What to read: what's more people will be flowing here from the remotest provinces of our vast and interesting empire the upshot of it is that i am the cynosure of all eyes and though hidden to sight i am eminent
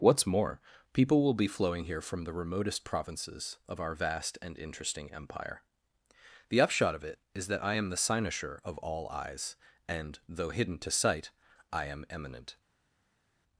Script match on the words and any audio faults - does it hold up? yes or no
yes